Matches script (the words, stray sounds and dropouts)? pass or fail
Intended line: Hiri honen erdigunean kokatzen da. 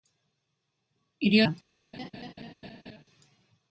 fail